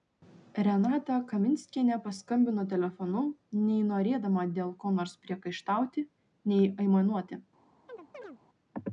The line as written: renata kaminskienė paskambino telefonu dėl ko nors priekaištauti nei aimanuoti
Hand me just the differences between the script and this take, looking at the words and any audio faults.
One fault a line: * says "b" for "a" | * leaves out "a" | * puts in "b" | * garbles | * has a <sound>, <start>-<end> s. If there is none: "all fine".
* puts in "nei norėdama"
* has a chirp, 7.9-8.4 s